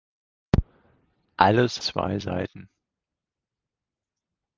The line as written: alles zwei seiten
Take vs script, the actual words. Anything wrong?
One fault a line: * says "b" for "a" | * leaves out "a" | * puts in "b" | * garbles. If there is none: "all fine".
all fine